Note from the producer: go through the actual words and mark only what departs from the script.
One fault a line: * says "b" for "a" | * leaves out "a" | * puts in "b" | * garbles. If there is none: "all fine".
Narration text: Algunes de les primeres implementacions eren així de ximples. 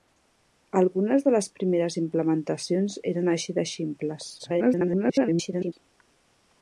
* garbles